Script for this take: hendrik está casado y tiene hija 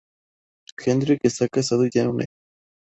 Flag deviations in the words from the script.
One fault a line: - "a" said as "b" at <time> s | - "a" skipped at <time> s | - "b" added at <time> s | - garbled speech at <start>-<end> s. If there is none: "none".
- "una" added at 2.1 s